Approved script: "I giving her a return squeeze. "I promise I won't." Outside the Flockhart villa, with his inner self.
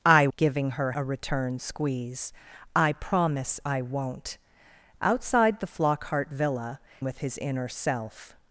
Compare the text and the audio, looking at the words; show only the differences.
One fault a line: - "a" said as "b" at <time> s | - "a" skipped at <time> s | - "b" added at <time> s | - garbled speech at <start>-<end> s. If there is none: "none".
none